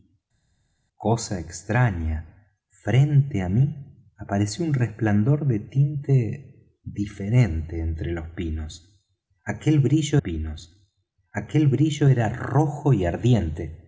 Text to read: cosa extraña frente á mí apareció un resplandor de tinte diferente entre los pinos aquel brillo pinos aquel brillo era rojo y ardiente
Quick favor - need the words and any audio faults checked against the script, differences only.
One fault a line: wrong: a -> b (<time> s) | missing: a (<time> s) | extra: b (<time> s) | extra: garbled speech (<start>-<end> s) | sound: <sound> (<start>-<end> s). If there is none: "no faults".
no faults